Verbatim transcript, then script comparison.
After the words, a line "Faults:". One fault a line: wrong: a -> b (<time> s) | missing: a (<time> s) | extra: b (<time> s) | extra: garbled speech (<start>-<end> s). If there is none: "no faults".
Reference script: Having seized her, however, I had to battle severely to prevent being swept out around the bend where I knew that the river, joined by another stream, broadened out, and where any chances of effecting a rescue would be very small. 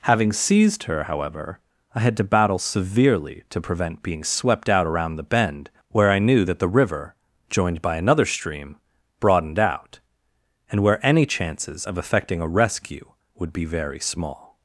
Having seized her, however, I had to battle severely to prevent being swept out around the bend where I knew that the river, joined by another stream, broadened out, and where any chances of effecting a rescue would be very small.
Faults:
no faults